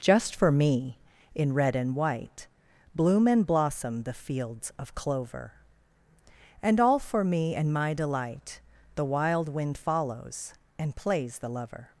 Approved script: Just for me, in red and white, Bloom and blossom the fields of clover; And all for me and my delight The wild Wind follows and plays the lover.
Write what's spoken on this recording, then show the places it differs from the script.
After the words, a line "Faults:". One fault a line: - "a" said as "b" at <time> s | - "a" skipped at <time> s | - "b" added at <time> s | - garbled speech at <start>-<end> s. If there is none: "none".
Just for me, in red and white, Bloom and blossom the fields of clover; And all for me and my delight The wild Wind follows and plays the lover.
Faults:
none